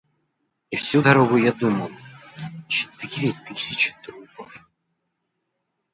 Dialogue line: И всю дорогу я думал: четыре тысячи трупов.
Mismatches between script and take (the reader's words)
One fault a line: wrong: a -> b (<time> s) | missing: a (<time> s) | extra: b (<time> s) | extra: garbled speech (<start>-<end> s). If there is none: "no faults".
no faults